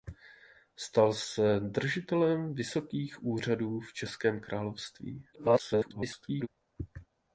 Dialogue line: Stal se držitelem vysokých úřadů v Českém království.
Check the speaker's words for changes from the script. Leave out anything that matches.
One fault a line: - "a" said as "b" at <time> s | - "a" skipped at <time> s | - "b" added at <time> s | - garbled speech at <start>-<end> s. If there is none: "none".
- garbled speech at 5.3-6.5 s